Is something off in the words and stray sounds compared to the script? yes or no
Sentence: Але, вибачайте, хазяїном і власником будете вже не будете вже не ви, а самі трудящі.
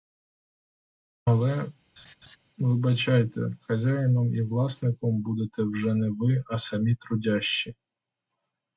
yes